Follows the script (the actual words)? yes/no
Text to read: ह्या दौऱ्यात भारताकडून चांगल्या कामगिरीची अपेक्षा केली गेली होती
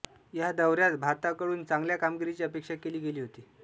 yes